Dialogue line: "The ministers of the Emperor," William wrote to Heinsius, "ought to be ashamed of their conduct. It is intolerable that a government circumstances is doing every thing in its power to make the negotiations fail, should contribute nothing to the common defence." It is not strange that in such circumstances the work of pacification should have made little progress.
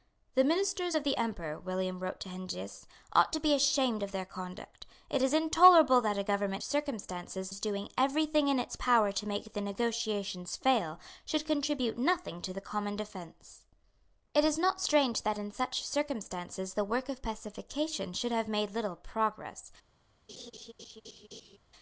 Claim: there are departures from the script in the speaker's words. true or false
false